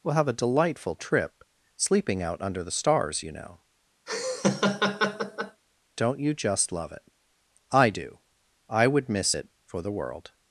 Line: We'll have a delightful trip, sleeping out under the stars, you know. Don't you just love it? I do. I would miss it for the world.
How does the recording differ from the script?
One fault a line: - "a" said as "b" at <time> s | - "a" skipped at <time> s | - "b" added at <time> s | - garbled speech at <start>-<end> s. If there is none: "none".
none